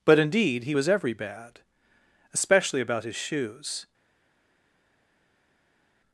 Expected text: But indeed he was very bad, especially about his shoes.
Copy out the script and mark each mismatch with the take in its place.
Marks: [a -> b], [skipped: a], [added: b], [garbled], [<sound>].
But indeed he was [very -> every] bad, especially about his shoes.